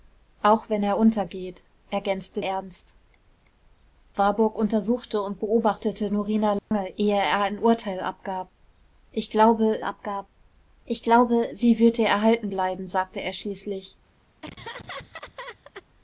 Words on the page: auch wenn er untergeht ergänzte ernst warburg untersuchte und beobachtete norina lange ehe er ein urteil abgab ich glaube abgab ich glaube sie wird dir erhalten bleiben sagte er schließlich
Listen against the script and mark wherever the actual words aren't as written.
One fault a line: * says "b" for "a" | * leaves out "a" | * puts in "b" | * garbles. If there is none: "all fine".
all fine